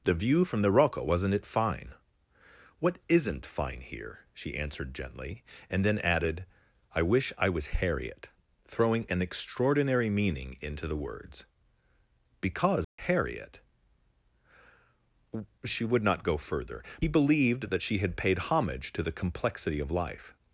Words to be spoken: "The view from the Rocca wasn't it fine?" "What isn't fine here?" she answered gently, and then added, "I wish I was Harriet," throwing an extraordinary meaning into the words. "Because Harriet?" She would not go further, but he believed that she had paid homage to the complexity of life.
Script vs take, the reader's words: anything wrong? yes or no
yes